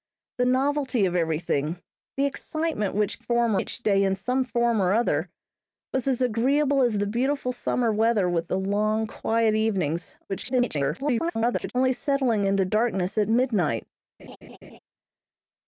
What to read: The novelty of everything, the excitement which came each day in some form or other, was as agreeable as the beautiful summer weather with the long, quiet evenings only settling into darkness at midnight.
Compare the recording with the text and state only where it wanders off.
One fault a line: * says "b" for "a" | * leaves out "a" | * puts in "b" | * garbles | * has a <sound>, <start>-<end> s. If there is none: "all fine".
* says "form" for "came"
* garbles
* has a laugh, 14.2-14.8 s